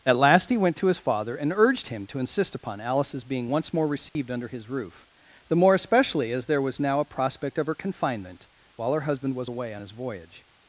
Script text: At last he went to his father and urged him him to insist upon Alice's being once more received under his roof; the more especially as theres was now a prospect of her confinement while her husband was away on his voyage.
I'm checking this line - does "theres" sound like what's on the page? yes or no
no